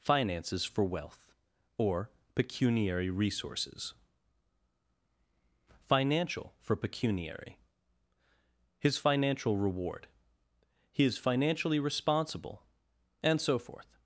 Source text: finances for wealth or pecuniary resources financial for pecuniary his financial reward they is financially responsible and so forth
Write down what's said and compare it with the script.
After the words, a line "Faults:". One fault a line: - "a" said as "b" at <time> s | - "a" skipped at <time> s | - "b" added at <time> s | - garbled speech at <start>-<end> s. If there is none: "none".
finances for wealth or pecuniary resources financial for pecuniary his financial reward he is financially responsible and so forth
Faults:
- "they" said as "he" at 10.9 s